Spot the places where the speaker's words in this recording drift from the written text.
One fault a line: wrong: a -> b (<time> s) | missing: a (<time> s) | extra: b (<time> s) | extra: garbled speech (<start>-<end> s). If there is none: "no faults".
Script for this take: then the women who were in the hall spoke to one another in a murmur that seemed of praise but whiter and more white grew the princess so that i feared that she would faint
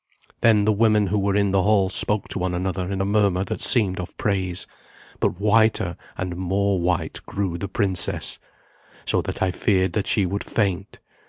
no faults